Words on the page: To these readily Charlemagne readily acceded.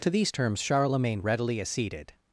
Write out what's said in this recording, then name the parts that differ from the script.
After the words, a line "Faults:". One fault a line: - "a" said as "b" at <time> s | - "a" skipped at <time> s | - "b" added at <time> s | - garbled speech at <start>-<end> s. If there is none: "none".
To these terms Charlemagne readily acceded.
Faults:
- "readily" said as "terms" at 0.3 s